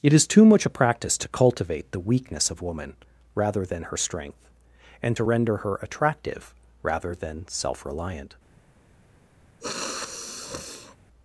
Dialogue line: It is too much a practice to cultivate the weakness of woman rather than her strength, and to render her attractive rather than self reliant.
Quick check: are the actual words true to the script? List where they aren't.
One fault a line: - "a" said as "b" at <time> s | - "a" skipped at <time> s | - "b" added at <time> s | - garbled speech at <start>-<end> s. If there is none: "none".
none